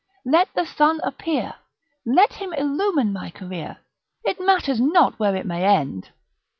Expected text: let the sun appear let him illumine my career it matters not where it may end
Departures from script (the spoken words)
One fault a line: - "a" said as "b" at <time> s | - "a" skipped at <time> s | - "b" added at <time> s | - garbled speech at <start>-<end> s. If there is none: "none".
none